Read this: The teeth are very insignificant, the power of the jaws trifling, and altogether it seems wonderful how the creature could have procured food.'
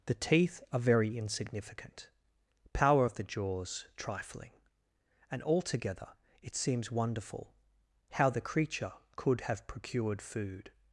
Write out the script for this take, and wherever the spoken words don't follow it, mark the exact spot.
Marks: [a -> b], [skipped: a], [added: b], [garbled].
The teeth are very insignificant, [skipped: the] power of the jaws trifling, and altogether it seems wonderful how the creature could have procured food.'